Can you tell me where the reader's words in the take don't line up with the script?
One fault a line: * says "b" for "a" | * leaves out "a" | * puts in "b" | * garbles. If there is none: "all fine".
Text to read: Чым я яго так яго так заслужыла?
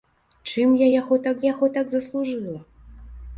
all fine